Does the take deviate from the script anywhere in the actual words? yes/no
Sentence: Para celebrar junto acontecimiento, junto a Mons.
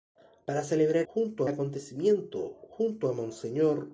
no